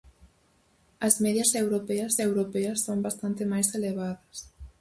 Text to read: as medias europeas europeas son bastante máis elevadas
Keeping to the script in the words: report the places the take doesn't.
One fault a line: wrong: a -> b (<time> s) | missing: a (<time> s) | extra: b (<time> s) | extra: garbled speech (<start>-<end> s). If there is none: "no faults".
no faults